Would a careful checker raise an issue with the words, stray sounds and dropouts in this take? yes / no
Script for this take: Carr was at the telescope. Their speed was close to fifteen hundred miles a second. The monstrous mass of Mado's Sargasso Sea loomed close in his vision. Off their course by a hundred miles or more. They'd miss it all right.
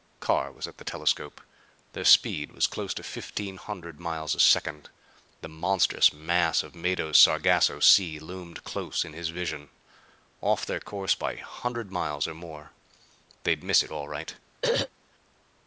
yes